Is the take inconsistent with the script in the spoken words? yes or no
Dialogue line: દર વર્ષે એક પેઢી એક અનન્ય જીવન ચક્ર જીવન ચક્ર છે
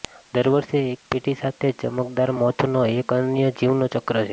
yes